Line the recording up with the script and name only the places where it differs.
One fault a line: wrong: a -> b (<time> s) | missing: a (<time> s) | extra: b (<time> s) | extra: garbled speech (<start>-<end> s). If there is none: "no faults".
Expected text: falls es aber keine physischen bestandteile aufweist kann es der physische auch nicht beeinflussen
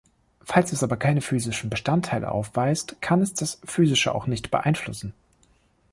wrong: der -> das (3.3 s)